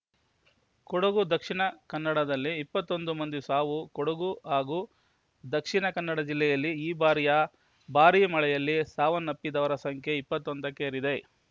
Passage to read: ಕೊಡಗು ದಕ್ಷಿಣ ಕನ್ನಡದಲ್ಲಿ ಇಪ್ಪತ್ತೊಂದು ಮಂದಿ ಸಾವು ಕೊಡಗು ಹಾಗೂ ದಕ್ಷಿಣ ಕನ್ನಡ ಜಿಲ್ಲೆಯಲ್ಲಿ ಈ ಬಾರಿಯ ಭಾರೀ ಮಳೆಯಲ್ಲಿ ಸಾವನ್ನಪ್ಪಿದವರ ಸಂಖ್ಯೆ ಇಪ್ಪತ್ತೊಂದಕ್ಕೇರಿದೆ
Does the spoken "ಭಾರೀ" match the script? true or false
true